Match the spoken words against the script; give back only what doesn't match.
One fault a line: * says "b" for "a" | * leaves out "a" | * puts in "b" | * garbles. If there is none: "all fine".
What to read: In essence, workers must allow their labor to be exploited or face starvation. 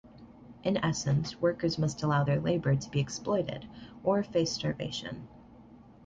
all fine